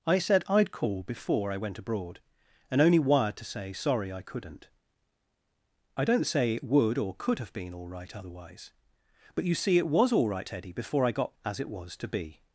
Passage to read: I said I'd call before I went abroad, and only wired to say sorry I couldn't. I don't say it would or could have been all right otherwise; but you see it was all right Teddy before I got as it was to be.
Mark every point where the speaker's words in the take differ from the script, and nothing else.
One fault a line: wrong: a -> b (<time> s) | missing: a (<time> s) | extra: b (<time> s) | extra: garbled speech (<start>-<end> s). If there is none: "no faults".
no faults